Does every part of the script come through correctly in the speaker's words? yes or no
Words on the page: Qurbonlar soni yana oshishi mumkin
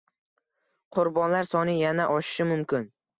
yes